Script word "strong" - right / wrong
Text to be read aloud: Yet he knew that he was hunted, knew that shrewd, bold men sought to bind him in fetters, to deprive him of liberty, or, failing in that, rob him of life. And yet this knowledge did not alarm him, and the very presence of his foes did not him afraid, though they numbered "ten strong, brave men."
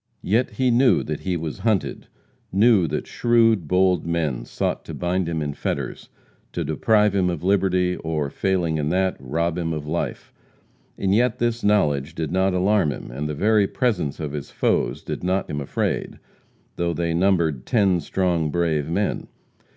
right